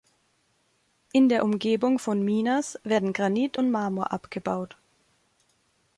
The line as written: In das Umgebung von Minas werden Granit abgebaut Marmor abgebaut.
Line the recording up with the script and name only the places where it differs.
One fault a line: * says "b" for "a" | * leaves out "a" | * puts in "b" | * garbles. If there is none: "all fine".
* says "der" for "das"
* says "und" for "abgebaut"